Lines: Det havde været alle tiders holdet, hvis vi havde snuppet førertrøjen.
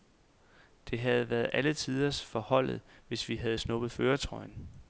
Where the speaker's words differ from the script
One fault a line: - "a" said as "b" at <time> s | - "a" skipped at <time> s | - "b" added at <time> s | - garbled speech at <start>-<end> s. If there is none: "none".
- "for" added at 2.2 s